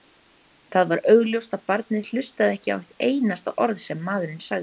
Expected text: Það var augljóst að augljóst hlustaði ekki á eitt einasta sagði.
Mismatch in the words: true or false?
true